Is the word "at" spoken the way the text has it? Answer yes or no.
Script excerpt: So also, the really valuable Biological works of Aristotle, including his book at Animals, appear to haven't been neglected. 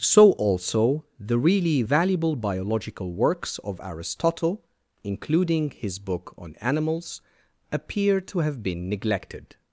no